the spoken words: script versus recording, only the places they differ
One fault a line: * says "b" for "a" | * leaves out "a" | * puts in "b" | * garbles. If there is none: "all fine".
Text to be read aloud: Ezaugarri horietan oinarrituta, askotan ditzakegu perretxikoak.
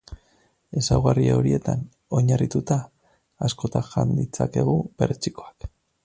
* puts in "jan"